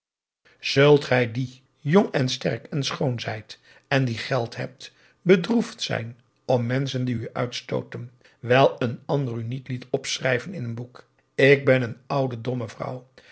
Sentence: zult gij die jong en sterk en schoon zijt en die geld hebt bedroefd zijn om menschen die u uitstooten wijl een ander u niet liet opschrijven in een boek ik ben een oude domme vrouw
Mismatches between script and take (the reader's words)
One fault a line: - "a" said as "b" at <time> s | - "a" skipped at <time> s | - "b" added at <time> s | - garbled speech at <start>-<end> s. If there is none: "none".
none